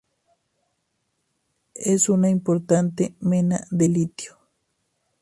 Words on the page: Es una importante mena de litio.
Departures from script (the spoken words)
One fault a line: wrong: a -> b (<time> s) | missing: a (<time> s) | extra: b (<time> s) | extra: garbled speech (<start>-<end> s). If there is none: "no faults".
no faults